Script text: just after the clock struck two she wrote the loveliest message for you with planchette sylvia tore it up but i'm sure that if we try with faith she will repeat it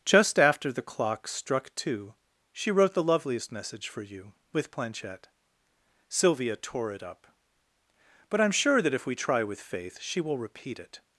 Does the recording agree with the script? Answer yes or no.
yes